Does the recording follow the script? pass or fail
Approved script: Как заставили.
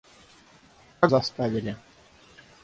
pass